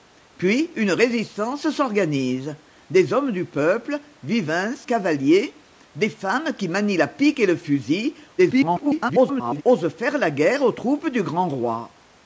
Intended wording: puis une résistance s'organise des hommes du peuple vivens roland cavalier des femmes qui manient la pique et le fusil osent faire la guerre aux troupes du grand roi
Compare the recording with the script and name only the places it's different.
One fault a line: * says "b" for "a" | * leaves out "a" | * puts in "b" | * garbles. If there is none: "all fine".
* leaves out "roland"
* garbles